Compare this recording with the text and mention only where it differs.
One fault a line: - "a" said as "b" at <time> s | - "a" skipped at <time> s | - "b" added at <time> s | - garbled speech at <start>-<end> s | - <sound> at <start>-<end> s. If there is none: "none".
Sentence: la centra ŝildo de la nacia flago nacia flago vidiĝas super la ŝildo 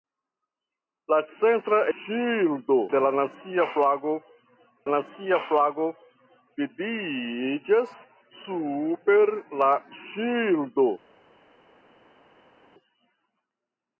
none